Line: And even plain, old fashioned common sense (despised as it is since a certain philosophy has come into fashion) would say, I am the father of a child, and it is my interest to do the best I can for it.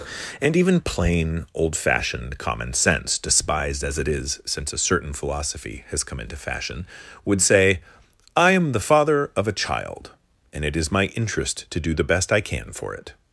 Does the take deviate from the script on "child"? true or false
false